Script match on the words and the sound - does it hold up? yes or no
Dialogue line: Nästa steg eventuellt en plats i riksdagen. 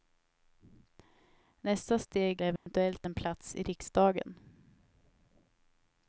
no